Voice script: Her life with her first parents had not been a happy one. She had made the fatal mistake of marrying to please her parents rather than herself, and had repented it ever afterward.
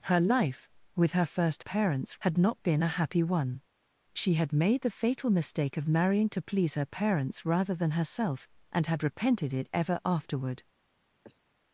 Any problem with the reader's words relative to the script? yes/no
no